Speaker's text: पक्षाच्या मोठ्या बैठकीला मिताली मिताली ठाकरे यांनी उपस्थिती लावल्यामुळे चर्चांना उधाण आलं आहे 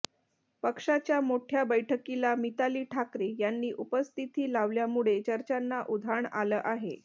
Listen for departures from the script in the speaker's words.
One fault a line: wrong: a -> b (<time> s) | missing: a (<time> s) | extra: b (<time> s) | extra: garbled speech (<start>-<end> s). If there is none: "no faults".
missing: मिताली (2.8 s)